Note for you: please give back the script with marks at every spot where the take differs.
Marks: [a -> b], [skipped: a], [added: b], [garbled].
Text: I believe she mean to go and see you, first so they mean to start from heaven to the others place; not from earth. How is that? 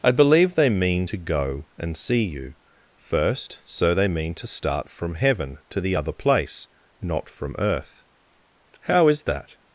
I believe [she -> they] mean to go and see you, first so they mean to start from heaven to the [others -> other] place; not from earth. How is that?